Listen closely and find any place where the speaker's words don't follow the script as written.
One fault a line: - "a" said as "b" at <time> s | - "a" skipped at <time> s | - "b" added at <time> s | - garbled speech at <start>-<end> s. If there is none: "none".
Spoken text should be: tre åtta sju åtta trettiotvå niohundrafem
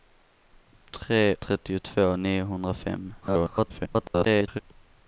- "åtta sju åtta" skipped at 1.4 s
- garbled speech at 3.2-4.6 s